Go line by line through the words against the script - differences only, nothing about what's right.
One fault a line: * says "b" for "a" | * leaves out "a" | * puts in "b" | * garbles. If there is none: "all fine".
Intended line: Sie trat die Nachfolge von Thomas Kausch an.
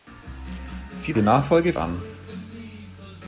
* leaves out "trat"
* leaves out "von Thomas Kausch"